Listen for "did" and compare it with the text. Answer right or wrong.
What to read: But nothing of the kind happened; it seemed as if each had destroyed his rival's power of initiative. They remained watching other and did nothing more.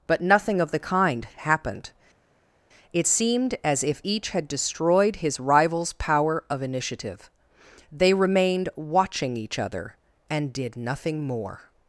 right